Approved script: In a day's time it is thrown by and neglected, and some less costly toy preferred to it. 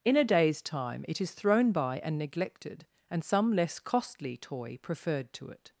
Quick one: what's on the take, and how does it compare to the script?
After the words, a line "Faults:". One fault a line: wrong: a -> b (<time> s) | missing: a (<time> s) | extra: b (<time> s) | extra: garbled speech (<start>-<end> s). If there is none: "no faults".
In a day's time it is thrown by and neglected, and some less costly toy preferred to it.
Faults:
no faults